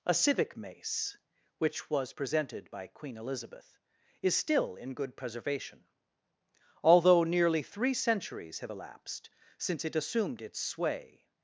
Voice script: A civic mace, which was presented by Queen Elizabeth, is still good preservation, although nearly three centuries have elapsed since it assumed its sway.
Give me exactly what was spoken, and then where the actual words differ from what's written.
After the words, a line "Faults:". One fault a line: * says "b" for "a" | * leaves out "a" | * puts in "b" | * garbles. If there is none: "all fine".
A civic mace, which was presented by Queen Elizabeth, is still in good preservation, although nearly three centuries have elapsed since it assumed its sway.
Faults:
* puts in "in"